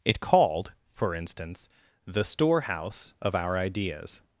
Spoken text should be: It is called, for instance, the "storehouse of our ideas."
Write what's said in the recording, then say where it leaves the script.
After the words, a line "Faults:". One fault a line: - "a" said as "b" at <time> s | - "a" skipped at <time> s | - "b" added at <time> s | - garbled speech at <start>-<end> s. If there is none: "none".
It called, for instance, the "storehouse of our ideas."
Faults:
- "is" skipped at 0.2 s